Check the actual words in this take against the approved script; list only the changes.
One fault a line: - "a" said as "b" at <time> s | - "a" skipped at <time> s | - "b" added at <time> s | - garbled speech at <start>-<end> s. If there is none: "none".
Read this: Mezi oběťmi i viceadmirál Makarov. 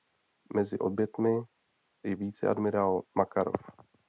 none